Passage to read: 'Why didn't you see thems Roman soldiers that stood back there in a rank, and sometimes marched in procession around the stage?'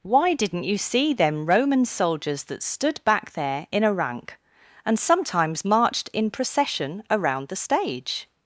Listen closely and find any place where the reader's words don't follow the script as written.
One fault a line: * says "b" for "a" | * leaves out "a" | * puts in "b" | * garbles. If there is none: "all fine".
* says "them" for "thems"